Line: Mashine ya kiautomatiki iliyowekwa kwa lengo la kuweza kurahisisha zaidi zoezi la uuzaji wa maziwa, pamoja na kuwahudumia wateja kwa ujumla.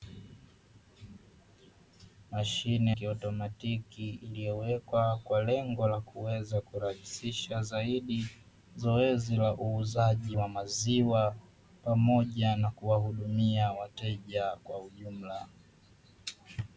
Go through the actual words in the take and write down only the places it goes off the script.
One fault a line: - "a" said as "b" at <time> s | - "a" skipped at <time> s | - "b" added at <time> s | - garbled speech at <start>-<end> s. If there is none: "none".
- "ya" skipped at 2.9 s